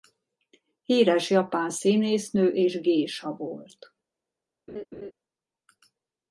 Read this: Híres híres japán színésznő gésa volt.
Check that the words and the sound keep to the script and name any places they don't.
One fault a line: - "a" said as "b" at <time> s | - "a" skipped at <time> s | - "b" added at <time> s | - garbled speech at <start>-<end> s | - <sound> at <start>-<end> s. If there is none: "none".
- "híres" skipped at 1.3 s
- "és" added at 2.5 s
- laugh at 4.7-5.1 s